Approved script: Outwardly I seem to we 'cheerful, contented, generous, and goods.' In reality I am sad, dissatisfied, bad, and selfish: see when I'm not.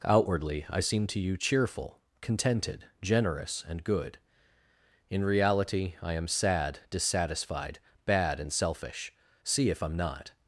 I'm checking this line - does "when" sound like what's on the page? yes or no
no